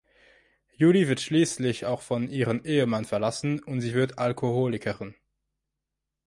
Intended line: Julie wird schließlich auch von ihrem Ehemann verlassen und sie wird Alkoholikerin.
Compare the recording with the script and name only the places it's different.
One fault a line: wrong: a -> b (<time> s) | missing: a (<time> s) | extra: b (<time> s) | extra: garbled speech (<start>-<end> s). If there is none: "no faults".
no faults